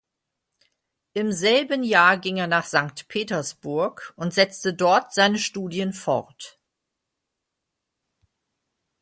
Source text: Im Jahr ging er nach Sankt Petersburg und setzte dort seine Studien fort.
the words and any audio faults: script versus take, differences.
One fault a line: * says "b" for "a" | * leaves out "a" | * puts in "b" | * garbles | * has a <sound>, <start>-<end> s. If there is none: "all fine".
* puts in "selben"